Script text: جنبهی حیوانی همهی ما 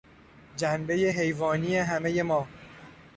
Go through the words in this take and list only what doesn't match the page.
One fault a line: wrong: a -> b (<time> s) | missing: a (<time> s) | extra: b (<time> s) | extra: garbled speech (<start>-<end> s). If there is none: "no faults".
no faults